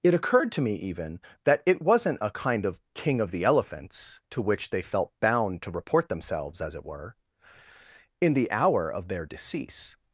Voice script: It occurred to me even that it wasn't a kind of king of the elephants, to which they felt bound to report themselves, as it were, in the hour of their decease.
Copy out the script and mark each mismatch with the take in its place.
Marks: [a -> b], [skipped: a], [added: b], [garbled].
It occurred to me even that it wasn't a kind of king of the elephants, to which they felt bound to report themselves, as it were, in the hour of their decease.